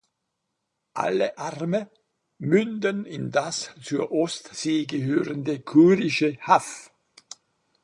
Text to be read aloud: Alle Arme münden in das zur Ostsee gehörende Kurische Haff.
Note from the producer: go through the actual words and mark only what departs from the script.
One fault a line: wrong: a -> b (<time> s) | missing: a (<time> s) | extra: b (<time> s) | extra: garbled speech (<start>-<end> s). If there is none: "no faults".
no faults